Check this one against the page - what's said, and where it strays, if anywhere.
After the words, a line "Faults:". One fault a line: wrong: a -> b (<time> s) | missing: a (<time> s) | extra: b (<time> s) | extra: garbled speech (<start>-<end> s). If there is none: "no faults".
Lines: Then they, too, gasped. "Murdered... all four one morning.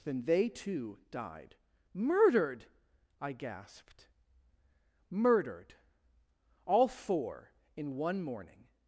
Then they, too, died." "Murdered?" I gasped. "Murdered... all four in one morning.
Faults:
extra: died Murdered I (1.1 s)
extra: in (7.7 s)